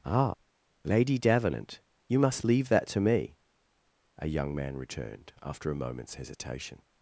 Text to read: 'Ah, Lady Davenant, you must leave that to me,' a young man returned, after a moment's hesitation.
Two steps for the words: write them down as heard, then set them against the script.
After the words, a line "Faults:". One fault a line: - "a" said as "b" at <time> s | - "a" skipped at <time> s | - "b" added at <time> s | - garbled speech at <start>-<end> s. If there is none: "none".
'Ah, Lady Davenant, you must leave that to me,' a young man returned, after a moment's hesitation.
Faults:
none